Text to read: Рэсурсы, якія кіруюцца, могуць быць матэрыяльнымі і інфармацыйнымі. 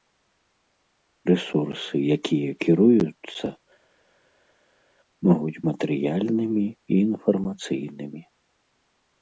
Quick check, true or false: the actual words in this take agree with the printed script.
false